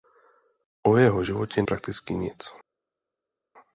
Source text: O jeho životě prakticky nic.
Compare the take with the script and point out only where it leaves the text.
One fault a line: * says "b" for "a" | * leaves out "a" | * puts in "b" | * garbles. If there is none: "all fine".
all fine